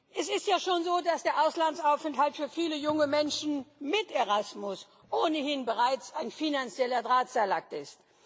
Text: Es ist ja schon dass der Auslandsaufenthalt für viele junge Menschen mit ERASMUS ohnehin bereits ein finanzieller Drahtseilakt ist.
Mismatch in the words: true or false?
true